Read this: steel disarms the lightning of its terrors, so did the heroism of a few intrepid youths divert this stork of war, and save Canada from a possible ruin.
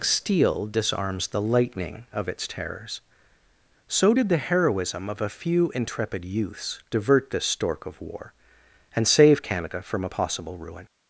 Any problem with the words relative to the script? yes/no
no